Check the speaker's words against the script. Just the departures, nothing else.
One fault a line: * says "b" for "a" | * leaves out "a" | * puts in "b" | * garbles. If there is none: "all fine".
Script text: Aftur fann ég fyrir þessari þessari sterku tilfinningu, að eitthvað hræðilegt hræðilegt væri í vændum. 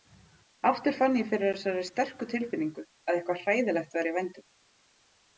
* leaves out "þessari"
* leaves out "hræðilegt"